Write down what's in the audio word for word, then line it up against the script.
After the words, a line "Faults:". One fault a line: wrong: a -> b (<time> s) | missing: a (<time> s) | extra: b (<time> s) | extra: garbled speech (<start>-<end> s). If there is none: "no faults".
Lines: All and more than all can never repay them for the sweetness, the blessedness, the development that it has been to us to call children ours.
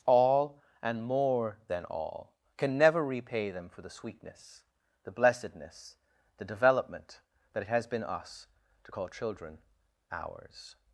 All and more than all can never repay them for the sweetness, the blessedness, the development that it has been us to call children ours.
Faults:
missing: to (8.0 s)